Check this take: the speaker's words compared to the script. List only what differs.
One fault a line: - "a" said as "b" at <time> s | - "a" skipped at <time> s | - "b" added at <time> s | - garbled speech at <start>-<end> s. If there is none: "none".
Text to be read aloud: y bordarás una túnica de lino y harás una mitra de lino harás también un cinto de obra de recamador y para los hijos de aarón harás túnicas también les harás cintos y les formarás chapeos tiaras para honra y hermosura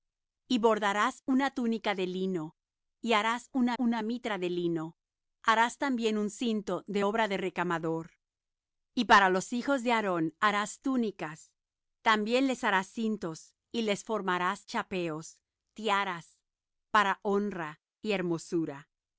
- "una" added at 3.8 s